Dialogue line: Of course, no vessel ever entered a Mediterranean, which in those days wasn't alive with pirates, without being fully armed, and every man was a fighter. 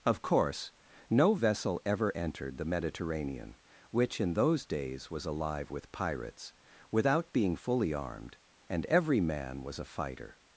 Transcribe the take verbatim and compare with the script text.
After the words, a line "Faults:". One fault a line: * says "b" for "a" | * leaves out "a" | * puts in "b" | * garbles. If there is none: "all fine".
Of course, no vessel ever entered the Mediterranean, which in those days was alive with pirates, without being fully armed, and every man was a fighter.
Faults:
* says "the" for "a"
* says "was" for "wasn't"